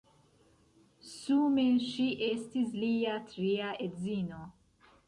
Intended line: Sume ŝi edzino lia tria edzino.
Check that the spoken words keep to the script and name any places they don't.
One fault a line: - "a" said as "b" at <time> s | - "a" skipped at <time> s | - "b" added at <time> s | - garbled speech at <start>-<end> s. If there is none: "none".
- "edzino" said as "estis" at 2.3 s